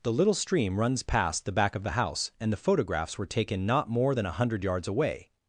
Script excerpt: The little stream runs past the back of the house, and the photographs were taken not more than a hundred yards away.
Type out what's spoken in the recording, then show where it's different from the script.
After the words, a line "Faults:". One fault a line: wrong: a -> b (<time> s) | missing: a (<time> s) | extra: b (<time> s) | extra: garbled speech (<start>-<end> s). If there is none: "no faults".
The little stream runs past the back of the house, and the photographs were taken not more than a hundred yards away.
Faults:
no faults